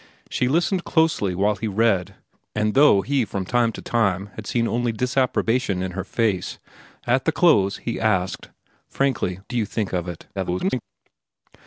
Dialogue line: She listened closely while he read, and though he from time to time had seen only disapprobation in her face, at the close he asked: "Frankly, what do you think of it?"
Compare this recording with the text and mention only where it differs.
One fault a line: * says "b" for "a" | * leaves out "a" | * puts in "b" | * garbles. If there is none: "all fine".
* leaves out "what"
* garbles